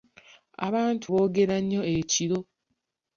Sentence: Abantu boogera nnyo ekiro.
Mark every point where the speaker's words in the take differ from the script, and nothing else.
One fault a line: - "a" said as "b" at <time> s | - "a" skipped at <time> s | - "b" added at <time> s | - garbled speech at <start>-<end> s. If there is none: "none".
none